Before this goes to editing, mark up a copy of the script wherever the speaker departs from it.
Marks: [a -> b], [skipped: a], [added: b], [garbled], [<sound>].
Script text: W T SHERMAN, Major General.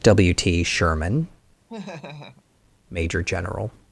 W T SHERMAN, [laugh] Major General.